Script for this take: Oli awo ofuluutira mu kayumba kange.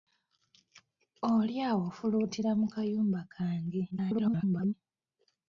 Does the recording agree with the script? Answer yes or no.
no